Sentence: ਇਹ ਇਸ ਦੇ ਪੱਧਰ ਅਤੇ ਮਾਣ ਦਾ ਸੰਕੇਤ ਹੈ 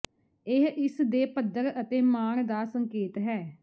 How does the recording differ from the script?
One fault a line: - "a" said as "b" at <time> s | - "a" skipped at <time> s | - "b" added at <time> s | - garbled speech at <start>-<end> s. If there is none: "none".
none